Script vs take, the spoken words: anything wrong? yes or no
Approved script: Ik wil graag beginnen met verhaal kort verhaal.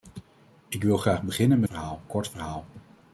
no